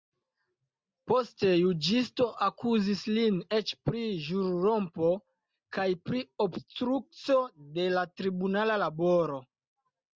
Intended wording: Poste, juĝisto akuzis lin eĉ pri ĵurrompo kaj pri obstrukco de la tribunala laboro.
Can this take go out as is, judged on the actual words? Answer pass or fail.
pass